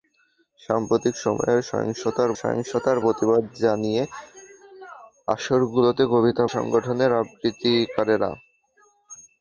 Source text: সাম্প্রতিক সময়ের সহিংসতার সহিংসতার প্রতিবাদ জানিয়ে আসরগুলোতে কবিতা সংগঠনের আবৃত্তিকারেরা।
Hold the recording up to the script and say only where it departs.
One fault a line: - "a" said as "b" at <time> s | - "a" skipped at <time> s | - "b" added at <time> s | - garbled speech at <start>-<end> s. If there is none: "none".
none